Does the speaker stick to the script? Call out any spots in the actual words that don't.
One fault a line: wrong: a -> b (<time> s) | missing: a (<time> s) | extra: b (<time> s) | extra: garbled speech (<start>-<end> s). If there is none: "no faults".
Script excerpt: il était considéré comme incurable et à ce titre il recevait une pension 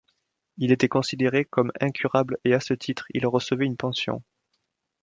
no faults